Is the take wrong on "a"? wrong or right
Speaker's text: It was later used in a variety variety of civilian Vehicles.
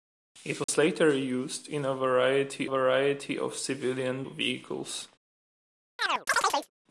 right